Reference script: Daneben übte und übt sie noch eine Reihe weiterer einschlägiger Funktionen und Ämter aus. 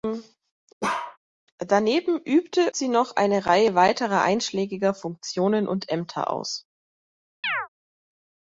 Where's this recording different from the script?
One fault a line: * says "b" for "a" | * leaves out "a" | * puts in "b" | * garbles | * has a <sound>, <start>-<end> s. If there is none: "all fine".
* has a bark, 0.8-1.2 s
* leaves out "und übt"
* has a chirp, 7.4-7.7 s